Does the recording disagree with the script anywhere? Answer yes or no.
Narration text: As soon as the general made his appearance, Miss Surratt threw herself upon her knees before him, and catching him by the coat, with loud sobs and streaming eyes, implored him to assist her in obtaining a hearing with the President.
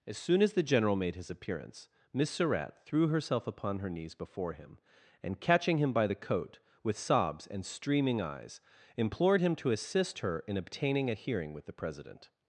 yes